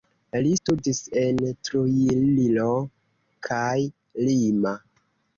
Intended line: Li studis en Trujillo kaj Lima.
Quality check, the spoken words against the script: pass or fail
pass